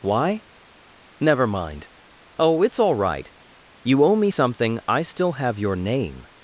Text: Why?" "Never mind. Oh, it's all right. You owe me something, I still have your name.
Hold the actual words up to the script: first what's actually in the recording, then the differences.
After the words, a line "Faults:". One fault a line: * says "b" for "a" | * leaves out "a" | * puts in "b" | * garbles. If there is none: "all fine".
Why?" "Never mind. Oh, it's all right. You owe me something, I still have your name.
Faults:
all fine